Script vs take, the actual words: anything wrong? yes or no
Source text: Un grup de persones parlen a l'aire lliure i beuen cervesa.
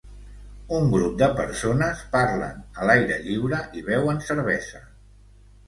no